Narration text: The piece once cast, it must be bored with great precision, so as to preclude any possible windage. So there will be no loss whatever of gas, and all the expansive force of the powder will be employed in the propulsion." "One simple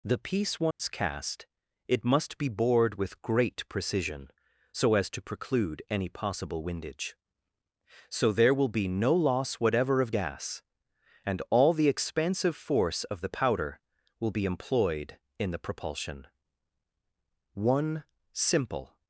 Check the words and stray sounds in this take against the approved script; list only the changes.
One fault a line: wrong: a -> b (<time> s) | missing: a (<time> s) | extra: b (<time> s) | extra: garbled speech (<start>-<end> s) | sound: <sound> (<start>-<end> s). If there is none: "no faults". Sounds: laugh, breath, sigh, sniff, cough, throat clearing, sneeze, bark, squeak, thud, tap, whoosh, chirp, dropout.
sound: dropout (0.7-0.8 s)